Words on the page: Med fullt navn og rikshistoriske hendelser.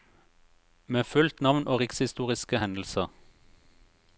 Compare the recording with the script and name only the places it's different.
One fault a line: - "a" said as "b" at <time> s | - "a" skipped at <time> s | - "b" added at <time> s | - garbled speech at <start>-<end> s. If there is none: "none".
none